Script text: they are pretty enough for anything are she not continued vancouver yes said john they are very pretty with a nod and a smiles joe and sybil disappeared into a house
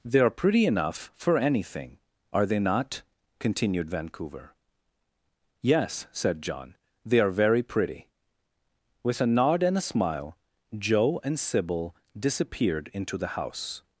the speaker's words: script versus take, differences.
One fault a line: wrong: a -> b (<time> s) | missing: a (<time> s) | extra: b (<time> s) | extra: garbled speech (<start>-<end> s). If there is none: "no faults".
wrong: she -> they (2.5 s)
wrong: smiles -> smile (9.8 s)
wrong: a -> the (13.2 s)